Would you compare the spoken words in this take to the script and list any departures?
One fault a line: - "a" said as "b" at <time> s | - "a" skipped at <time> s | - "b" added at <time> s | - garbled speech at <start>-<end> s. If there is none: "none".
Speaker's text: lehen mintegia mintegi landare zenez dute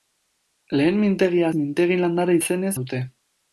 none